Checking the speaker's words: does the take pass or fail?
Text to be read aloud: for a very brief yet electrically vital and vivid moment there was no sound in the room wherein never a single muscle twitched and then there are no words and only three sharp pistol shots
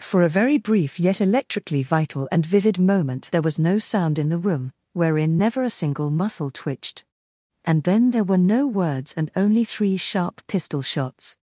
fail